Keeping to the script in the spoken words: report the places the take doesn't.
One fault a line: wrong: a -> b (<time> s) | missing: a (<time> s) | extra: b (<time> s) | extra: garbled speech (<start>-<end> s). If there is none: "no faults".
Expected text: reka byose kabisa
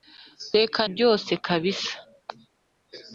no faults